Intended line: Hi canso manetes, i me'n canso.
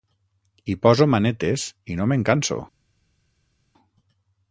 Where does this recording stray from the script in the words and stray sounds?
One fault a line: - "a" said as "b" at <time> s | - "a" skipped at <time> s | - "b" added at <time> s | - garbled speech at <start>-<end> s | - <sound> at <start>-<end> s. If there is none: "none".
- "canso" said as "poso" at 0.8 s
- "no" added at 2.0 s